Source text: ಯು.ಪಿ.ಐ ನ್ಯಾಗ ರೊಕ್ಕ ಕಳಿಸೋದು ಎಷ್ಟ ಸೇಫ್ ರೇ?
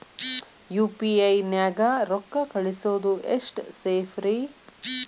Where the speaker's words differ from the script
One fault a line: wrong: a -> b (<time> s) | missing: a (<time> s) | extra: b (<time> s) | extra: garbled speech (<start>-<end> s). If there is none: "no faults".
no faults